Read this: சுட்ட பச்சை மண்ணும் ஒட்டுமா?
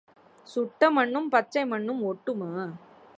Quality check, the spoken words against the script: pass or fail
fail